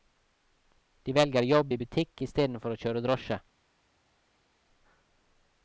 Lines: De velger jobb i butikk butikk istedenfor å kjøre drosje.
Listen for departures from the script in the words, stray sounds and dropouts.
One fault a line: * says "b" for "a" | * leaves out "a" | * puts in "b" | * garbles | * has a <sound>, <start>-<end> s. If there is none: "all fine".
* leaves out "butikk"